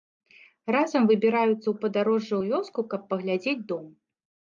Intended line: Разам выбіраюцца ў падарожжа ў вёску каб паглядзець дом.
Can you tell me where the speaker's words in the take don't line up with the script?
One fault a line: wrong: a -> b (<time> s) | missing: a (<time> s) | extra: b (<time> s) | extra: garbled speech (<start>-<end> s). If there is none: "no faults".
no faults